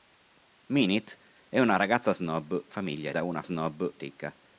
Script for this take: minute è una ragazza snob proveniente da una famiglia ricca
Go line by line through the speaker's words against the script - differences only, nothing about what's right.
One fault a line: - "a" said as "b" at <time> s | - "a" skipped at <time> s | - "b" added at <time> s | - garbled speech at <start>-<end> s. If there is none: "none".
- "proveniente" said as "famiglia" at 2.7 s
- "famiglia" said as "snob" at 3.4 s